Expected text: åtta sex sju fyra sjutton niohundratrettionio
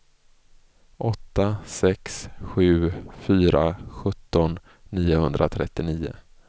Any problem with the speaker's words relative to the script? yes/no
no